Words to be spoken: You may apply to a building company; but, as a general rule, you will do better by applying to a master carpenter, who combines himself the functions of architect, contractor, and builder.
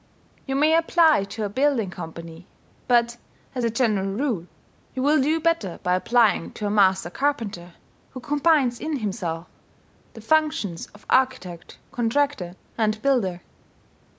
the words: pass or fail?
fail